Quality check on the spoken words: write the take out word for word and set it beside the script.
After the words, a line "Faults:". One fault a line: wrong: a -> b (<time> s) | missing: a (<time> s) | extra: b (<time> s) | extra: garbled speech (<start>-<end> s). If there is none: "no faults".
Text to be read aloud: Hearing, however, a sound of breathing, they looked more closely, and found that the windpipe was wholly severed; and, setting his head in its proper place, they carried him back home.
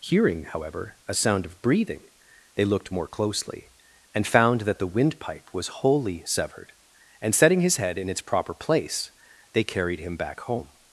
Hearing, however, a sound of breathing, they looked more closely, and found that the windpipe was wholly severed; and, setting his head in its proper place, they carried him back home.
Faults:
no faults